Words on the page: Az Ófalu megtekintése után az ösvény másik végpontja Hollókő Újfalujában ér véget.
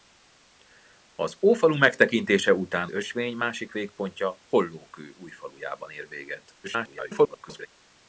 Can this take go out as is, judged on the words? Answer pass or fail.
fail